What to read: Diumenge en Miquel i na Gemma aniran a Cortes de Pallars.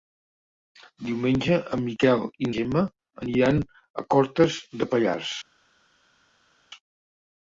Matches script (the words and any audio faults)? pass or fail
fail